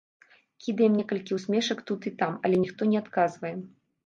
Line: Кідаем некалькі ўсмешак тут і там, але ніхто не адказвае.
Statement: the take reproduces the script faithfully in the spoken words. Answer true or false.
true